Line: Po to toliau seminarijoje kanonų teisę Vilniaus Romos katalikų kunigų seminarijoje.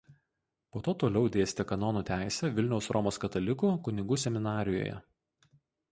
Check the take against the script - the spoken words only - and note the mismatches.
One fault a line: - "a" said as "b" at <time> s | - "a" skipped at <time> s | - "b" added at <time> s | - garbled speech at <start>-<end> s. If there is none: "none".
- "seminarijoje" said as "dėstė" at 1.3 s